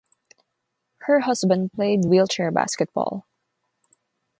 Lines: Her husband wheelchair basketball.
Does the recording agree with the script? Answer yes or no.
no